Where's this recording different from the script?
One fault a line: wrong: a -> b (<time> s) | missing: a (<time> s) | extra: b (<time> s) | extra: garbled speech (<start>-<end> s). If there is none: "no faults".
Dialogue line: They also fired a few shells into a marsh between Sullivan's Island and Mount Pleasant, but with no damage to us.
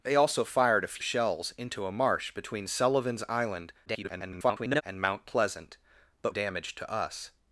missing: few (1.0 s)
extra: garbled speech (3.9-4.8 s)
missing: with no (6.3 s)